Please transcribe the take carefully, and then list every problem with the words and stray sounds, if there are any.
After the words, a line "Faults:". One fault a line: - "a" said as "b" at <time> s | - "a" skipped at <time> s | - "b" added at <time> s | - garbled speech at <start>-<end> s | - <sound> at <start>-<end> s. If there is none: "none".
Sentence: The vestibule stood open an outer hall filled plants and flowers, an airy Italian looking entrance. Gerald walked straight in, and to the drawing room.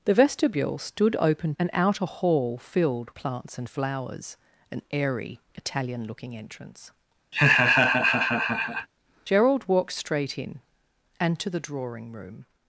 The vestibule stood open an outer hall filled plants and flowers, an airy Italian looking entrance. Gerald walked straight in, and to the drawing room.
Faults:
- laugh at 7.3-8.9 s